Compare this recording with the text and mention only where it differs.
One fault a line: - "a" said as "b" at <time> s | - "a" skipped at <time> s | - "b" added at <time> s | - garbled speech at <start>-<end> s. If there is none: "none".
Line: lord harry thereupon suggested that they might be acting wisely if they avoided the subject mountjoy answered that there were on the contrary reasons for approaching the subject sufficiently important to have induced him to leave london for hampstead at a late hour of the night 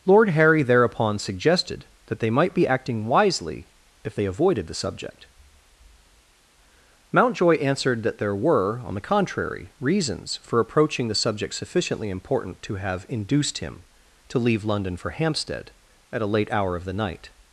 none